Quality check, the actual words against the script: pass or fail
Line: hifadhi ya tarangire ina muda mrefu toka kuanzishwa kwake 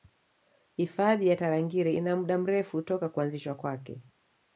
pass